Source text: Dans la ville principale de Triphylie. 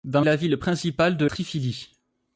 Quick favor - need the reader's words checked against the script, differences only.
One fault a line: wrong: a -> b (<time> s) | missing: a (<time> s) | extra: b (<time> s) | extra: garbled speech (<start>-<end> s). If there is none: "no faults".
no faults